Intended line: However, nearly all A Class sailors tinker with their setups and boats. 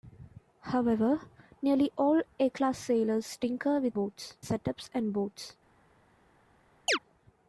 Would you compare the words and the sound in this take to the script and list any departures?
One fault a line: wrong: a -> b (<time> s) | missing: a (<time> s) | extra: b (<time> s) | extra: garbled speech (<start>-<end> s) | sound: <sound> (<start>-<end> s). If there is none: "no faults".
wrong: their -> boats (3.9 s)
sound: chirp (6.9-7.0 s)